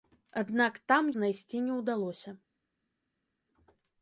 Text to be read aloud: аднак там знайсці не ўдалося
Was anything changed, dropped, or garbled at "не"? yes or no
no